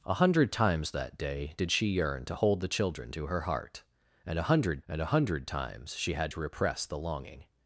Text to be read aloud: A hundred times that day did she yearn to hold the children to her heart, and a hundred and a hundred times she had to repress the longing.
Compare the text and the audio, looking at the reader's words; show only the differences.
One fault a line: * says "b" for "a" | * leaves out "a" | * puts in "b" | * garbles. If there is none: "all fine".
all fine